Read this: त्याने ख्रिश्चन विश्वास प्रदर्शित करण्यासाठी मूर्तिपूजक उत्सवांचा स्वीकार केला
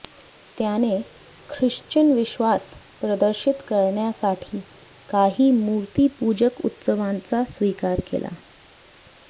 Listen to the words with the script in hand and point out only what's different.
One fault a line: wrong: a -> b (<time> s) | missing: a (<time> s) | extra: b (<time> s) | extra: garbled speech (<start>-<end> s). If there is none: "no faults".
extra: काही (5.1 s)